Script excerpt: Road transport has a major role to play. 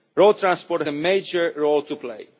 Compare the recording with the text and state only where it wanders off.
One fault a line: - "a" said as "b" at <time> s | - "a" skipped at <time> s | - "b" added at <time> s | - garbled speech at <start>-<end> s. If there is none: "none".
- "has" skipped at 0.8 s